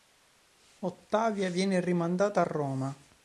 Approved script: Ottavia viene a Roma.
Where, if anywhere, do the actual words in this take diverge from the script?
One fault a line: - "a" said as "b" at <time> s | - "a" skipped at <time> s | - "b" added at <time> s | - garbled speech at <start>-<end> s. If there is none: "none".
- "rimandata" added at 1.8 s